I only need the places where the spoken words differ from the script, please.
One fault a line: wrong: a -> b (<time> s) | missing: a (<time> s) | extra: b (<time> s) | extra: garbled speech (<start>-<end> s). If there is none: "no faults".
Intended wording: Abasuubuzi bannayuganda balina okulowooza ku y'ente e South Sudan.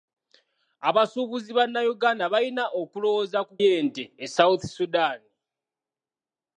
no faults